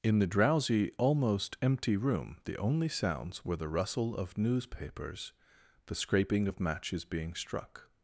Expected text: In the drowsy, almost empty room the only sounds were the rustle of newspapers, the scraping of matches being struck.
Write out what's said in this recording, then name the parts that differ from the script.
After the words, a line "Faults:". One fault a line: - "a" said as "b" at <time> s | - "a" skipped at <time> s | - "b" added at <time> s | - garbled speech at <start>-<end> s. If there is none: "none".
In the drowsy, almost empty room the only sounds were the rustle of newspapers, the scraping of matches being struck.
Faults:
none